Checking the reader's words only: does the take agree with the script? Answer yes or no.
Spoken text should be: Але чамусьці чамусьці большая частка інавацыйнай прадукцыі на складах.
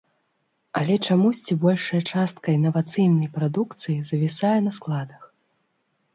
no